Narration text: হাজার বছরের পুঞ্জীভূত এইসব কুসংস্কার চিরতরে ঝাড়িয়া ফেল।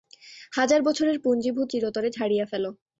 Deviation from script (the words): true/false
true